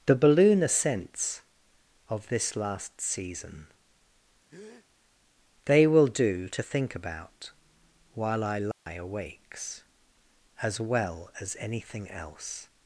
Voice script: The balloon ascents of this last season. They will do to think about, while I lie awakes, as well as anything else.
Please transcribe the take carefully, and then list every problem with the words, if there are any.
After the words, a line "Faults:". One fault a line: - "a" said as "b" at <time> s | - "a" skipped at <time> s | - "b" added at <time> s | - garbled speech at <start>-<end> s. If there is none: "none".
The balloon ascents of this last season. They will do to think about, while I lie awakes, as well as anything else.
Faults:
none